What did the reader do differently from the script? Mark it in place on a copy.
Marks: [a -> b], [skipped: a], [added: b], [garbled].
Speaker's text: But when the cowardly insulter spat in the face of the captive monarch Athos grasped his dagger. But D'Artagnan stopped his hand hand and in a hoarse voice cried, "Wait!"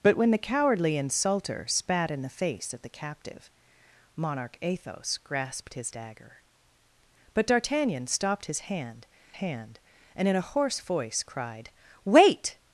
But when the cowardly insulter spat in the face of the captive monarch Athos grasped his dagger. But D'Artagnan stopped his hand hand and in a hoarse voice cried, "Wait!"